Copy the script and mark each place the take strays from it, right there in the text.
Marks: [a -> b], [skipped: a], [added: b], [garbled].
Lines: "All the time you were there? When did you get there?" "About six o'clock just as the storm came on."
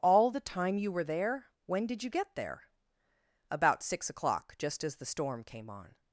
"All the time you were there? When did you get there?" "About six o'clock just as the storm came on."